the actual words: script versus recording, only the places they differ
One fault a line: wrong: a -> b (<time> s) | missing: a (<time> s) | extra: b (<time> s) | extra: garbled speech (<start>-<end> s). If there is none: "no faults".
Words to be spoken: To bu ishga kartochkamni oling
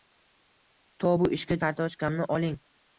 no faults